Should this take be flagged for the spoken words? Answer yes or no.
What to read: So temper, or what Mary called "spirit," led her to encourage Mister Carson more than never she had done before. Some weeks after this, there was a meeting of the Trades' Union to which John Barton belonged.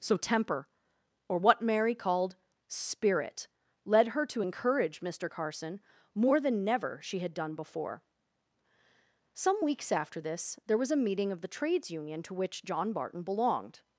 no